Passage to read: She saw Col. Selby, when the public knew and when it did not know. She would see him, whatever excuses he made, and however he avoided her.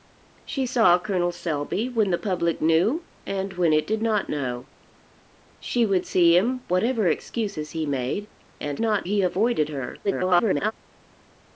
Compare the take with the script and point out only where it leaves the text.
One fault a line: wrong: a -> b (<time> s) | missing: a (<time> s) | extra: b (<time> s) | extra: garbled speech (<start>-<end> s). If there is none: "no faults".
wrong: however -> not (8.8 s)
extra: garbled speech (10.0-10.7 s)